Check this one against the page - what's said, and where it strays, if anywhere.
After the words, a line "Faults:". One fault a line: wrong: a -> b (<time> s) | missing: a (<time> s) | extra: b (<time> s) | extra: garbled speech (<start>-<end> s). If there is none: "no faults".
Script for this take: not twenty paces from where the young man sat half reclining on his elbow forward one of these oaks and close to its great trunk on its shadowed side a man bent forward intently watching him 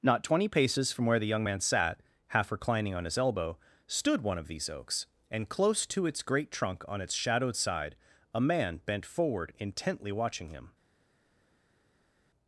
not twenty paces from where the young man sat half reclining on his elbow stood one of these oaks and close to its great trunk on its shadowed side a man bent forward intently watching him
Faults:
wrong: forward -> stood (3.9 s)